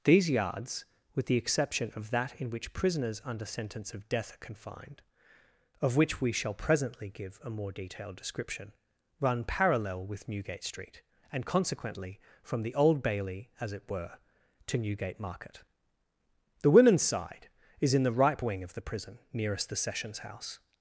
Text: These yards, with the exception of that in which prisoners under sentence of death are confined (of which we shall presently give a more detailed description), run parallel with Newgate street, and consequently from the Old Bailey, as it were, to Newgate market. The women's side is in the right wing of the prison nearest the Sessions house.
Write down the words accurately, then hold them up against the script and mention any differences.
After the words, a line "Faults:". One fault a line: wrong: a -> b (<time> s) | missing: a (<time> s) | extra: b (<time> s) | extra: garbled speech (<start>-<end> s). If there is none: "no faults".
These yards, with the exception of that in which prisoners under sentence of death are confined (of which we shall presently give a more detailed description), run parallel with Newgate street, and consequently from the Old Bailey, as it were, to Newgate market. The women's side is in the ripe wing of the prison nearest the Sessions house.
Faults:
wrong: right -> ripe (18.1 s)